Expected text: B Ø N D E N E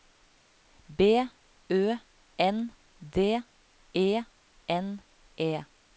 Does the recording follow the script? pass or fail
pass